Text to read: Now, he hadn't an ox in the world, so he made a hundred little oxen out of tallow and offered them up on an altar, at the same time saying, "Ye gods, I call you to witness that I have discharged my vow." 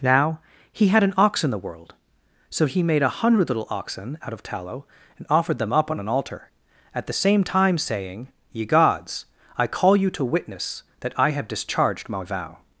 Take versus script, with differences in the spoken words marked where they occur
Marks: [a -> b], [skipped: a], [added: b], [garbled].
Now, he [hadn't -> had] an ox in the world, so he made a hundred little oxen out of tallow and offered them up on an altar, at the same time saying, "Ye gods, I call you to witness that I have discharged my vow."